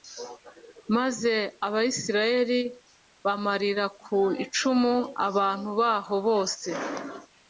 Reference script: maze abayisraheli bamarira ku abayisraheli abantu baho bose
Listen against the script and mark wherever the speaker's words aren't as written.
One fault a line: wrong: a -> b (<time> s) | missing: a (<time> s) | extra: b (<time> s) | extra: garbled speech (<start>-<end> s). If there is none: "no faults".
wrong: abayisraheli -> icumu (4.4 s)